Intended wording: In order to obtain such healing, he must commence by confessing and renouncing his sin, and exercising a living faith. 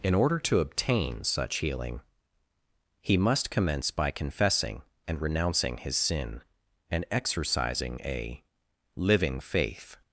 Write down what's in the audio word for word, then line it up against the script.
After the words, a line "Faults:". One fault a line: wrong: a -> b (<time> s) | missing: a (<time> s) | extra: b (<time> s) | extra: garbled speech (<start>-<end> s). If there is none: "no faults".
In order to obtain such healing, he must commence by confessing and renouncing his sin, and exercising a living faith.
Faults:
no faults